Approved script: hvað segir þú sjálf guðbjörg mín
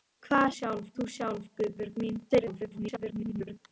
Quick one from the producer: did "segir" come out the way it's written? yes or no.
no